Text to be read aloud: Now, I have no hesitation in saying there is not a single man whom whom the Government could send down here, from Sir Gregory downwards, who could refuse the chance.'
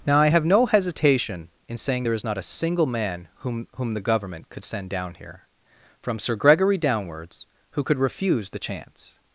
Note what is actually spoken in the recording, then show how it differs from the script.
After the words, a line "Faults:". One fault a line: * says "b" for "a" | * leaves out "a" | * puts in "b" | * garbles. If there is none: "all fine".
Now, I have no hesitation in saying there is not a single man whom whom the Government could send down here, from Sir Gregory downwards, who could refuse the chance.'
Faults:
all fine